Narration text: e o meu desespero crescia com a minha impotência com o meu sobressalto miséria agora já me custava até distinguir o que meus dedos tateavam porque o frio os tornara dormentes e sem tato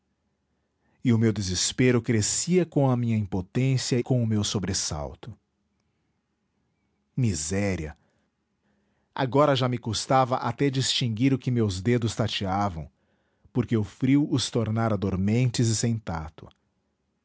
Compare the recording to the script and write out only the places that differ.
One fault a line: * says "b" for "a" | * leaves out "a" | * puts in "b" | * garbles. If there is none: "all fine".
all fine